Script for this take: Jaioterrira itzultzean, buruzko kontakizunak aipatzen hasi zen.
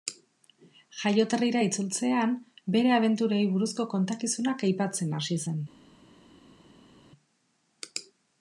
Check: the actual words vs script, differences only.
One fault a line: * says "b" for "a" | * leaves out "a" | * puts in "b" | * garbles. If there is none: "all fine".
* puts in "bere abenturei"